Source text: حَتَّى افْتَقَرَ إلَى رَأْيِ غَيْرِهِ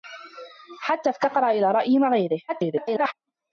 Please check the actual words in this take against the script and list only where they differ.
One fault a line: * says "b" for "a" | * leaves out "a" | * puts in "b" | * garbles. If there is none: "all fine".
* garbles